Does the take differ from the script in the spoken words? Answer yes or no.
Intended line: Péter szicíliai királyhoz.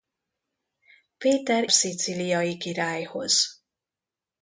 no